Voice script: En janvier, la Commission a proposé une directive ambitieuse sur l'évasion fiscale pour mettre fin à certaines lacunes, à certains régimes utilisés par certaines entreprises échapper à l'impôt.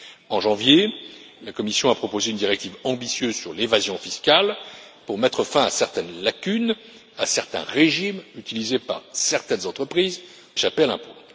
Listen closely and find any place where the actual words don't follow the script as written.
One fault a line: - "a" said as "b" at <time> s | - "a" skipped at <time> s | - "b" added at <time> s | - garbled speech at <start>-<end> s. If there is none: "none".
none